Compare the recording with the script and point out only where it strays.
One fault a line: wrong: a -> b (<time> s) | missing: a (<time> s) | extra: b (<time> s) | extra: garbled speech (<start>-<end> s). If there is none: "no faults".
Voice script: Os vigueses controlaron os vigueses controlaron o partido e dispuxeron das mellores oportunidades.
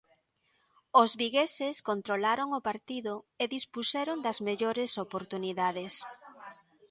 missing: os vigueses controlaron (2.5 s)